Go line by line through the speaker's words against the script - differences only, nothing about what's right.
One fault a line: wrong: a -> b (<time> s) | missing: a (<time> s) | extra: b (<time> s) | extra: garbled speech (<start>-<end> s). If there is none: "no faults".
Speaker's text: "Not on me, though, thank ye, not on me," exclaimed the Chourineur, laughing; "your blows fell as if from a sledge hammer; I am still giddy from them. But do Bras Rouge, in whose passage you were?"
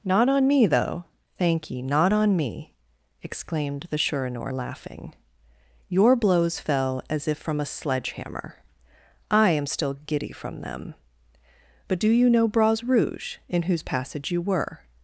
extra: you know (12.1 s)